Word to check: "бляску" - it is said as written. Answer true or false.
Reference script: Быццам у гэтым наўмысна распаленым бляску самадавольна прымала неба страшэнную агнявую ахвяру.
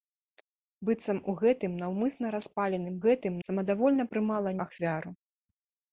false